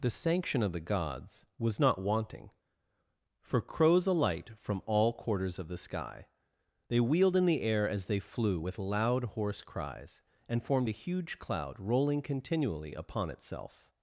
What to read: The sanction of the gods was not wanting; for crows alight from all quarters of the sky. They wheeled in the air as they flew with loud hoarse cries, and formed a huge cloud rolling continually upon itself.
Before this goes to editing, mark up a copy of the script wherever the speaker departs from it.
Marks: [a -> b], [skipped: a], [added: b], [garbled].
The sanction of the gods was not wanting; for crows alight from all quarters of the sky. They wheeled in the air as they flew with loud hoarse cries, and formed a huge cloud rolling continually upon itself.